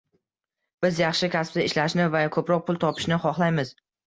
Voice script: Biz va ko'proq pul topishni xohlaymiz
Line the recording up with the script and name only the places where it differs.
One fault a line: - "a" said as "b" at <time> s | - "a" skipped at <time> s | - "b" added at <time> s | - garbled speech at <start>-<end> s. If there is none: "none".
- "yaxshi kasbda ishlashni" added at 1.0 s